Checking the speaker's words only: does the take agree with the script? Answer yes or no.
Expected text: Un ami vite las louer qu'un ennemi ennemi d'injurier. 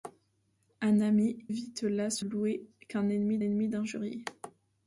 yes